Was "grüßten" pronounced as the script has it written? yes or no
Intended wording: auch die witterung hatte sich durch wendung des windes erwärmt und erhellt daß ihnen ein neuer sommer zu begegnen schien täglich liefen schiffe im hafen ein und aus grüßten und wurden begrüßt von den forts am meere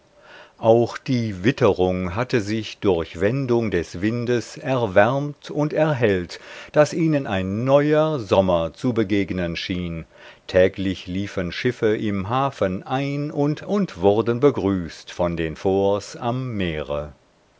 no